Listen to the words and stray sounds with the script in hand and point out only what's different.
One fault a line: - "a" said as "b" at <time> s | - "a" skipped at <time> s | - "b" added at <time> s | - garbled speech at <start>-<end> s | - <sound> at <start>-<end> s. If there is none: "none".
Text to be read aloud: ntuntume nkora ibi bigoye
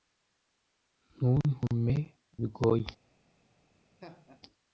- "nkora ibi" skipped at 1.9 s
- laugh at 4.0-4.4 s